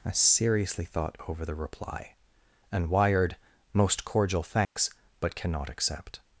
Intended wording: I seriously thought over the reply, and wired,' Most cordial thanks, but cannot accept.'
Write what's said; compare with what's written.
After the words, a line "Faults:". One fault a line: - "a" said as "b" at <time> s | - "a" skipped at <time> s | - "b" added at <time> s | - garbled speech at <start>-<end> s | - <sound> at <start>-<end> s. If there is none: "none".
I seriously thought over the reply, and wired,' Most cordial thanks, but cannot accept.'
Faults:
- dropout at 4.6-4.8 s